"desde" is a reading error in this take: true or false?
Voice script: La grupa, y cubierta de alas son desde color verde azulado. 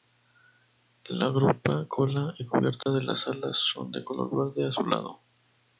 true